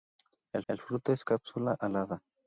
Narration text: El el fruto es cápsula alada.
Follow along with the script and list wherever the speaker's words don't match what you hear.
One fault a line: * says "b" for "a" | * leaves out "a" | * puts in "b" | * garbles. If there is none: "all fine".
all fine